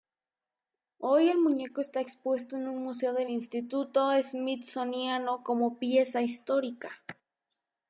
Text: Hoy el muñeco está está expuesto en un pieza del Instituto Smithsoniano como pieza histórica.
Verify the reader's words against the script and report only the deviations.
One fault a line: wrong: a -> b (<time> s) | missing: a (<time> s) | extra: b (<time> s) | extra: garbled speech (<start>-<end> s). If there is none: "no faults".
missing: está (2.0 s)
wrong: pieza -> museo (2.8 s)